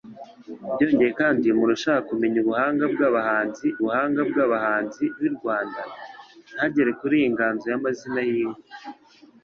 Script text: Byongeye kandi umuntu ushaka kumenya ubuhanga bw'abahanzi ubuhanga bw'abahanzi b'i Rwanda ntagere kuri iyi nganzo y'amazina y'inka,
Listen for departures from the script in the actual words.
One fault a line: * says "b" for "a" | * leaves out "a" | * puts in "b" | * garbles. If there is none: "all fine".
all fine